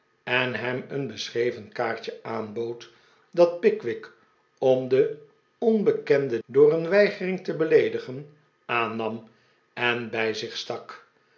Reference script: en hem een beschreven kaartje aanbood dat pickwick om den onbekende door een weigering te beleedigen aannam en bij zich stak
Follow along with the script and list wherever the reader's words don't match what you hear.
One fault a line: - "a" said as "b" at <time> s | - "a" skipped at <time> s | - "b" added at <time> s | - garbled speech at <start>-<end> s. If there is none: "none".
none